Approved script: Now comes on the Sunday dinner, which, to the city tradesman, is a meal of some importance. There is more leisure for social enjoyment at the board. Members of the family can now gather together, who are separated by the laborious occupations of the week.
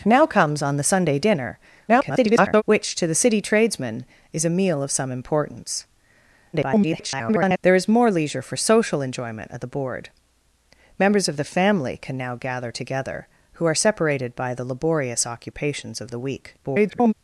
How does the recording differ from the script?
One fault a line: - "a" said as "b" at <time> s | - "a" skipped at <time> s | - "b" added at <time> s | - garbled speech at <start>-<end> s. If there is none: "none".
- garbled speech at 1.9-2.6 s
- garbled speech at 6.5-7.6 s
- garbled speech at 16.6-17.1 s